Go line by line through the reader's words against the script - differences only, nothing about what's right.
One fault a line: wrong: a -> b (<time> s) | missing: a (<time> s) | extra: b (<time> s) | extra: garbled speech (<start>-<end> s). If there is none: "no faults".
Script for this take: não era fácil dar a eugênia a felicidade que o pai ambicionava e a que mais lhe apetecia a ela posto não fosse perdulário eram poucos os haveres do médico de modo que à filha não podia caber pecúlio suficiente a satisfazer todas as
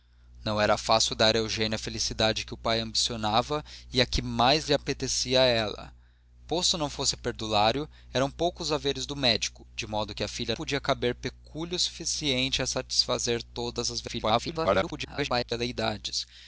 missing: não (10.6 s)
extra: garbled speech (14.1-15.5 s)